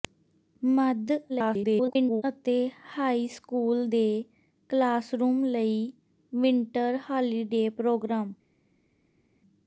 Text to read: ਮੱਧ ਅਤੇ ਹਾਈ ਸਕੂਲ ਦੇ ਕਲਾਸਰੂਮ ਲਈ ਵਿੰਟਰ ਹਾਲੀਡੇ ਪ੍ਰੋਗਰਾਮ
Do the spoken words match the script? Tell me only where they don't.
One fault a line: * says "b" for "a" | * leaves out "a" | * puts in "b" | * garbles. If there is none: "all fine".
* garbles